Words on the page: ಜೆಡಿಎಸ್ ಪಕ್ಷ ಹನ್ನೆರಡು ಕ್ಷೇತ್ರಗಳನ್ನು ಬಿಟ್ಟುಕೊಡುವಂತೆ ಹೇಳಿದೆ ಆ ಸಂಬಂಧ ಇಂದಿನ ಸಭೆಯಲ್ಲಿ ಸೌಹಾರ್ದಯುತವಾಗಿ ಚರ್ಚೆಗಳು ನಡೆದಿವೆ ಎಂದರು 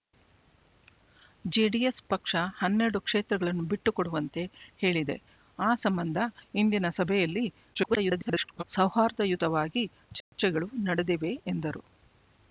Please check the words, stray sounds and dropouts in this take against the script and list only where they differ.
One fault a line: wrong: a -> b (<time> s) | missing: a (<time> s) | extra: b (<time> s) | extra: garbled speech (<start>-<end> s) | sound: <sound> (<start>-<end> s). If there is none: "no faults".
extra: garbled speech (7.7-8.6 s)
sound: dropout (10.2-10.3 s)